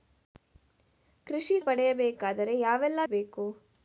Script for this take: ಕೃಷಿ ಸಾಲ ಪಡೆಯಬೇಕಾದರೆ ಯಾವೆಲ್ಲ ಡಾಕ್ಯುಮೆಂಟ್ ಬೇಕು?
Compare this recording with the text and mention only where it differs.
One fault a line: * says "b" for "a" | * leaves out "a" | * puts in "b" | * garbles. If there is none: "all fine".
* leaves out "ಸಾಲ"
* leaves out "ಡಾಕ್ಯುಮೆಂಟ್"